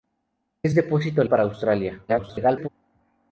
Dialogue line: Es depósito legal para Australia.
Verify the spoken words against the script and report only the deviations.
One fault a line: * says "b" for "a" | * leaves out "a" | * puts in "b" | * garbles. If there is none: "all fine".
* leaves out "legal"
* garbles